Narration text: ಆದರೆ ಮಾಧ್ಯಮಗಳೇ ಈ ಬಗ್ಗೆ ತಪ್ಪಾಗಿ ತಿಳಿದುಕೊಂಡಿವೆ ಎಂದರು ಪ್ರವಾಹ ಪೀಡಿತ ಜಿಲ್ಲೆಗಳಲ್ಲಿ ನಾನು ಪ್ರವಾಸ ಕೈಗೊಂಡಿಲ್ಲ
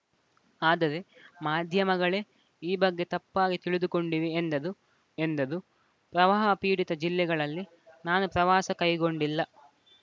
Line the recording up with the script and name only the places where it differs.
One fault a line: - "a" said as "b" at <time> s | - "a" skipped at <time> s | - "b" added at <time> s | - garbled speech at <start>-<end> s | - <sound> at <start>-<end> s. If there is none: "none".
- "ಎಂದರು" added at 5.3 s